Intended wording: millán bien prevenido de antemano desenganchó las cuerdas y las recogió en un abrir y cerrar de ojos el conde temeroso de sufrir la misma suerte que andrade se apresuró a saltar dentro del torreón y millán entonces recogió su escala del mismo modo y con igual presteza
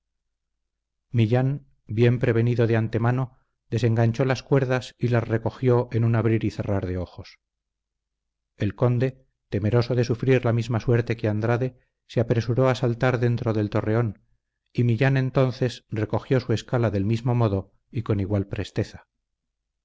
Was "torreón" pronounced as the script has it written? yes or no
yes